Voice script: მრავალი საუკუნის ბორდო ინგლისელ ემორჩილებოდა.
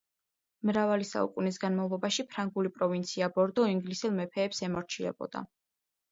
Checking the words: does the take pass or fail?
fail